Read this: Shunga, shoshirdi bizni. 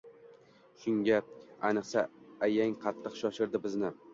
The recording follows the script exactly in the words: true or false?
false